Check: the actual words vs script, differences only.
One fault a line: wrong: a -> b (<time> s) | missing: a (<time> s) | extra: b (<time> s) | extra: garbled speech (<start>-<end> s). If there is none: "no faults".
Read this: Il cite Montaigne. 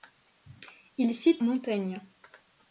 no faults